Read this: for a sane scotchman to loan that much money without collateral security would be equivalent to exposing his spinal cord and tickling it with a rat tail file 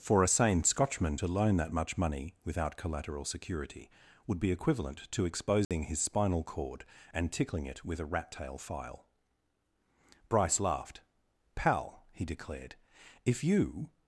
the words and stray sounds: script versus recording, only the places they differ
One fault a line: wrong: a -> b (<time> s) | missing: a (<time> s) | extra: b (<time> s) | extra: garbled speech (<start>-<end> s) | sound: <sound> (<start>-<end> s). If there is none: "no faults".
sound: dropout (5.6-5.7 s)
extra: bryce laughed pal he declared if you (10.3 s)